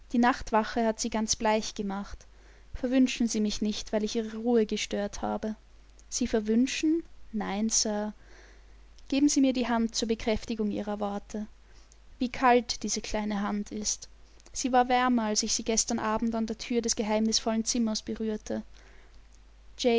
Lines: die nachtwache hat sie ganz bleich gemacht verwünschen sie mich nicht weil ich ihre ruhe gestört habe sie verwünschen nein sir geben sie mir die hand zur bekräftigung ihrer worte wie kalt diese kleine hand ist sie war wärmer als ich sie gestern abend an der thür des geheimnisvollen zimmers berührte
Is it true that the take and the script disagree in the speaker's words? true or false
false